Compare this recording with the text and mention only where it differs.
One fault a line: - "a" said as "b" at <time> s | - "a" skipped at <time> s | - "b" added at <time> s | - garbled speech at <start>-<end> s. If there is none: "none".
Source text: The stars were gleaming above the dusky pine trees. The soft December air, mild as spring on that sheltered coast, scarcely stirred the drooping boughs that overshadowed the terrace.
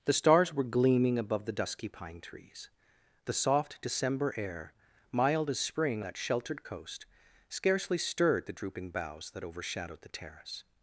- "on" skipped at 6.0 s